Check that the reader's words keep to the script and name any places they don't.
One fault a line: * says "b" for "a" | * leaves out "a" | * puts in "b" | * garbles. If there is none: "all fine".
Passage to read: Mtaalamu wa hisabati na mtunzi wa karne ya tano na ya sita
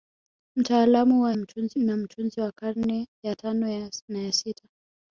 * says "mtunzi" for "hisabati"